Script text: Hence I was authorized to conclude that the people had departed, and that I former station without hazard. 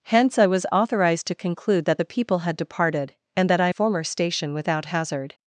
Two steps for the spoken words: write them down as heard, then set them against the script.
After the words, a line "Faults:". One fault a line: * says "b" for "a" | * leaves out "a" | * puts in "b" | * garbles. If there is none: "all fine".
Hence I was authorized to conclude that the people had departed, and that I former station without hazard.
Faults:
all fine